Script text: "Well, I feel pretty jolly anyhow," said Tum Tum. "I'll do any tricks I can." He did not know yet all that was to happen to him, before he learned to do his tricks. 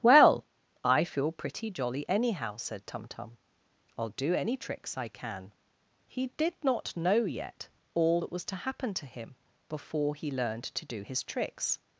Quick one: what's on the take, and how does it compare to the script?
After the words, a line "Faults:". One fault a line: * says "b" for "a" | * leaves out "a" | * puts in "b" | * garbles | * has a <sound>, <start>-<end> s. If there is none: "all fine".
"Well, I feel pretty jolly anyhow," said Tum Tum. "I'll do any tricks I can." He did not know yet all that was to happen to him, before he learned to do his tricks.
Faults:
all fine